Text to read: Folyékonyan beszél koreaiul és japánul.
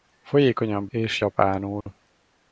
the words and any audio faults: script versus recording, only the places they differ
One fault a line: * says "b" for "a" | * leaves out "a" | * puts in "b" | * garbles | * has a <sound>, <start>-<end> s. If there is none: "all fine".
* leaves out "beszél koreaiul"
* has a dropout, 1.8-1.9 s